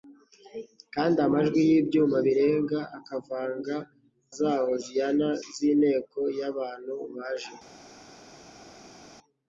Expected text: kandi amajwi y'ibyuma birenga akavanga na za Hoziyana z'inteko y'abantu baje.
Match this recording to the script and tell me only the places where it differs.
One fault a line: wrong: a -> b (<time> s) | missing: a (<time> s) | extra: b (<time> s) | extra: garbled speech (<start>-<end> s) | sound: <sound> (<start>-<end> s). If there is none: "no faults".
missing: na (3.8 s)